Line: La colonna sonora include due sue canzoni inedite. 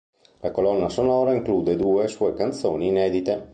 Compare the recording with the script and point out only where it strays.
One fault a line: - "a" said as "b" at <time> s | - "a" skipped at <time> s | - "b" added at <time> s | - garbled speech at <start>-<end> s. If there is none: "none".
none